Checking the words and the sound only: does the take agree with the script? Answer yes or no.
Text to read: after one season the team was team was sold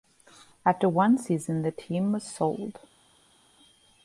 no